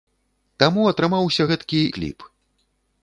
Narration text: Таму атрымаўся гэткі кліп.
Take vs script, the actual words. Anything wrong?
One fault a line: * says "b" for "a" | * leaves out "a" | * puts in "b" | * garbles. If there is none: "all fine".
all fine